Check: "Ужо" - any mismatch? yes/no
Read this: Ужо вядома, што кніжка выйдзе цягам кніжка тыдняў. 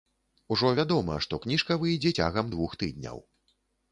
no